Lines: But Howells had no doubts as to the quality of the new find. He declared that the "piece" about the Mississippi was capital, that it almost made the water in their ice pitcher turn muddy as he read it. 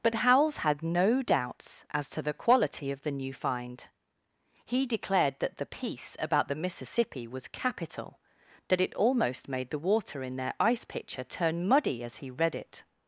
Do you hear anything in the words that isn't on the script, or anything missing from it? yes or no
no